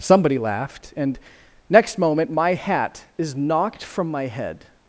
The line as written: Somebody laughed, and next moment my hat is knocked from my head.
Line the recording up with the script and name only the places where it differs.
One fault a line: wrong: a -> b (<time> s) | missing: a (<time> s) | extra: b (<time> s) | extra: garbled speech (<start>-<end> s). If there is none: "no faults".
no faults